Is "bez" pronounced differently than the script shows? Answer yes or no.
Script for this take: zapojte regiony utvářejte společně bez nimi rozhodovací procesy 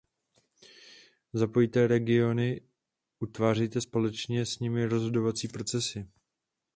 yes